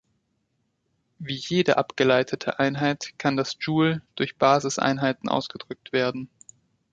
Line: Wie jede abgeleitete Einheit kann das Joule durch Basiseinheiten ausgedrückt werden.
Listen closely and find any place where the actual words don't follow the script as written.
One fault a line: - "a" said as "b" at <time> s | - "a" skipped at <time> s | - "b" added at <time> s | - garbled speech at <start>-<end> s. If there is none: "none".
none